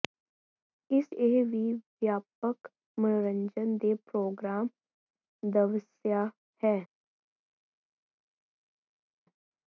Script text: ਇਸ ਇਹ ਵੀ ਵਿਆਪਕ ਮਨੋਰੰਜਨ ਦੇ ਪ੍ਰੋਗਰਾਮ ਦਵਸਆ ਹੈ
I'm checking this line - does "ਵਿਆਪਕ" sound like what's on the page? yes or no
yes